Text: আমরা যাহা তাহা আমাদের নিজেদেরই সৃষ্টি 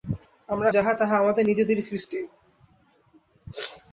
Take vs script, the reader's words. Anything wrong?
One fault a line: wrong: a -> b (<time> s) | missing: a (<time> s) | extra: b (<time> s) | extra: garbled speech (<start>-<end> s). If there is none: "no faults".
no faults